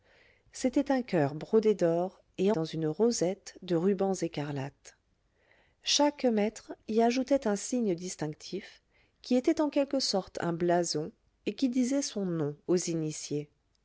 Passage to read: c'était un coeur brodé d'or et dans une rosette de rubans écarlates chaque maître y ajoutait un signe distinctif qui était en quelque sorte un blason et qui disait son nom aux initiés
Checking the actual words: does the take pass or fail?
pass